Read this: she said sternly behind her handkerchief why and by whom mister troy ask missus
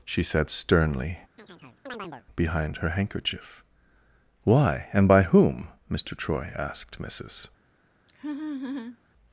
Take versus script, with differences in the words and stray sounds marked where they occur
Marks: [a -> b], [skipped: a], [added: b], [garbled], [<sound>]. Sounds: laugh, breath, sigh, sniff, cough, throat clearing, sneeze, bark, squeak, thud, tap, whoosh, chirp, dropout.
she said sternly [chirp] behind her handkerchief why and by whom mister troy [ask -> asked] missus [laugh]